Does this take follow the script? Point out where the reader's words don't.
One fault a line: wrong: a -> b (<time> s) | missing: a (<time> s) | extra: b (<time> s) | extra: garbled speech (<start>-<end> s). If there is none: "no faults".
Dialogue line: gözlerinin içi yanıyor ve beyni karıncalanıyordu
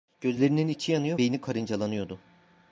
missing: ve (1.2 s)